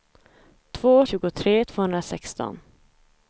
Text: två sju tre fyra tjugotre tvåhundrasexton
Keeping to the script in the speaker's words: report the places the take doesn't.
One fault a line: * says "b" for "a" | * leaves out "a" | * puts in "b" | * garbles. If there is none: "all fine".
* leaves out "sju tre fyra"